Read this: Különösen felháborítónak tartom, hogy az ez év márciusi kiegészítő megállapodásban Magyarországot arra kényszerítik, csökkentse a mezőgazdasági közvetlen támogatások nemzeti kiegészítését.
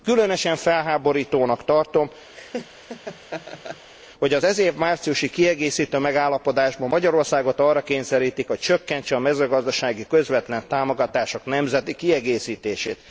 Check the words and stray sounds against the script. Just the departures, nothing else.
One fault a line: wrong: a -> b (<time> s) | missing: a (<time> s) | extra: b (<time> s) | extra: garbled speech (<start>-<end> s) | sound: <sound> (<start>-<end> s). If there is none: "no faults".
sound: laugh (2.3-3.9 s)
extra: hogy (8.5 s)